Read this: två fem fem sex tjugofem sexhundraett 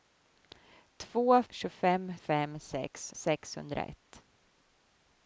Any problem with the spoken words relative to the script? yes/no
yes